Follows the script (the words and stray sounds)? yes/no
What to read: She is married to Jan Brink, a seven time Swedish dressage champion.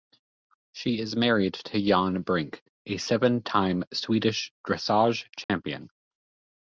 no